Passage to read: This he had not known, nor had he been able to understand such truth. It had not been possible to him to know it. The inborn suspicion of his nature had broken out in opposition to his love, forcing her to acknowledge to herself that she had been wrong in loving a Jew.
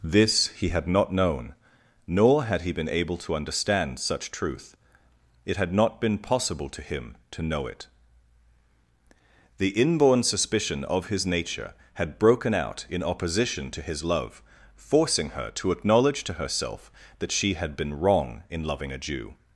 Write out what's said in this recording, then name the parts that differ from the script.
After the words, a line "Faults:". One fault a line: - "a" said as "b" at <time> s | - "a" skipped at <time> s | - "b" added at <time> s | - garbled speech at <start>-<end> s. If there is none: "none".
This he had not known, nor had he been able to understand such truth. It had not been possible to him to know it. The inborn suspicion of his nature had broken out in opposition to his love, forcing her to acknowledge to herself that she had been wrong in loving a Jew.
Faults:
none